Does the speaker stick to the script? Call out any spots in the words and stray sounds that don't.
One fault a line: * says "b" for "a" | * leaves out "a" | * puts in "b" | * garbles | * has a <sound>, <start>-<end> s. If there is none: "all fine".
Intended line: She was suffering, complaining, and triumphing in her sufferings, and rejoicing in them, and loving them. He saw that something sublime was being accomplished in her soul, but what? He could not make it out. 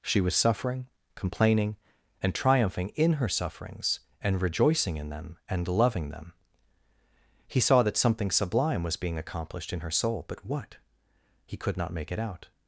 all fine